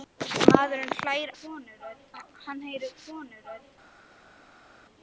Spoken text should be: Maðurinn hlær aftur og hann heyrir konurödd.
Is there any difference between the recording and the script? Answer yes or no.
yes